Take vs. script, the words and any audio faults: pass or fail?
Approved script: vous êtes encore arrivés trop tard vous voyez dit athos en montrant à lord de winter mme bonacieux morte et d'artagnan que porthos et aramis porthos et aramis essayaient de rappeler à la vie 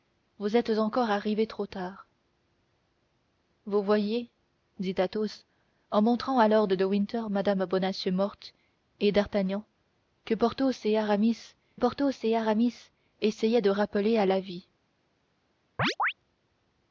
fail